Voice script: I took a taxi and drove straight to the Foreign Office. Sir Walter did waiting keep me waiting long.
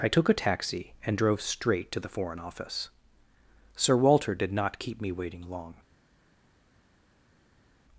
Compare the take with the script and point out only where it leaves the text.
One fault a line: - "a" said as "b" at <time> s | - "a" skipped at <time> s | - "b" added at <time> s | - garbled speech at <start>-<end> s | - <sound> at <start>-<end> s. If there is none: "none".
- "waiting" said as "not" at 4.5 s